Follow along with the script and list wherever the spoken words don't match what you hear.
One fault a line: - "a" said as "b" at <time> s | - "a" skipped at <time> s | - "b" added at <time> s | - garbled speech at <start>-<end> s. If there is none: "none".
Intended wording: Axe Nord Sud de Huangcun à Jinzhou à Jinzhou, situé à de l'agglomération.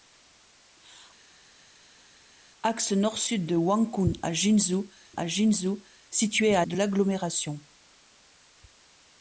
none